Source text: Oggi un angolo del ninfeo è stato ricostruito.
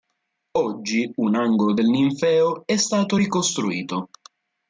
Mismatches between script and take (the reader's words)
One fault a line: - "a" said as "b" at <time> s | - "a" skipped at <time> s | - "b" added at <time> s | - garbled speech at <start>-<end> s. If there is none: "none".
none